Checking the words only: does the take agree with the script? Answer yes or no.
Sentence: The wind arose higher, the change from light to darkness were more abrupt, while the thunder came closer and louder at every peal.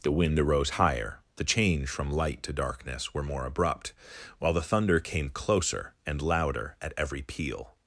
yes